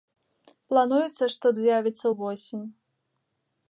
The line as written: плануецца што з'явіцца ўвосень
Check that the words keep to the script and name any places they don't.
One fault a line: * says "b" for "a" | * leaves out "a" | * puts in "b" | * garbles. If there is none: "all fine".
all fine